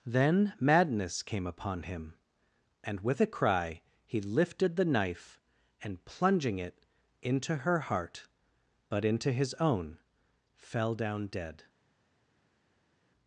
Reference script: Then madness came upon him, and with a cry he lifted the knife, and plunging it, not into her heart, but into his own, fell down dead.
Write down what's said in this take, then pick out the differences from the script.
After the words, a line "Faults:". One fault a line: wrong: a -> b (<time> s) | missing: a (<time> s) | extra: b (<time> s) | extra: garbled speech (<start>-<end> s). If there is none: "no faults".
Then madness came upon him, and with a cry he lifted the knife, and plunging it, into her heart, but into his own, fell down dead.
Faults:
missing: not (6.8 s)